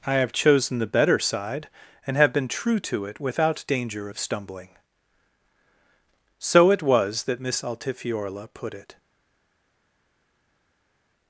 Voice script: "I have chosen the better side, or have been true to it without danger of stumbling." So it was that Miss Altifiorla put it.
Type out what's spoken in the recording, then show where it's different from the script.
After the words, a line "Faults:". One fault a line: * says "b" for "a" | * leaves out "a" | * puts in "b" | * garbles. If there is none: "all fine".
"I have chosen the better side, and have been true to it without danger of stumbling." So it was that Miss Altifiorla put it.
Faults:
* says "and" for "or"